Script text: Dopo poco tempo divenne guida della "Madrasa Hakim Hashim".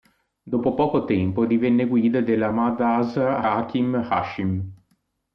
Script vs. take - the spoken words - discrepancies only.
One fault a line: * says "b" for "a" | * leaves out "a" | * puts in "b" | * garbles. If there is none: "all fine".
all fine